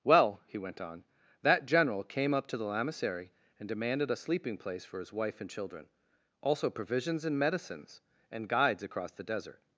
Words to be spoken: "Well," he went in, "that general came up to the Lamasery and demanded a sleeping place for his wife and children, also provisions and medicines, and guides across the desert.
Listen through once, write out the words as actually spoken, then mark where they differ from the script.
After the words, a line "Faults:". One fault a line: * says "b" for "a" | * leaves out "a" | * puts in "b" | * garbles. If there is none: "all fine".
"Well," he went on, "that general came up to the Lamasery and demanded a sleeping place for his wife and children, also provisions and medicines, and guides across the desert.
Faults:
* says "on" for "in"